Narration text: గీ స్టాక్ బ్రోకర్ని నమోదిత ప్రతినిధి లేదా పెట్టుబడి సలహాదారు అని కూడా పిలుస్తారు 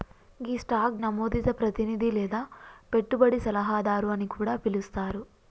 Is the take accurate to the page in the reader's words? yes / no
no